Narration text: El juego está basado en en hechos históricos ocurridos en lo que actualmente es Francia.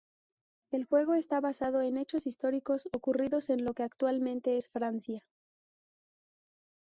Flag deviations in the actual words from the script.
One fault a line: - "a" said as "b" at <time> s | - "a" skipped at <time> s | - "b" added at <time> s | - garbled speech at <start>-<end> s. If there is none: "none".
- "en" skipped at 1.9 s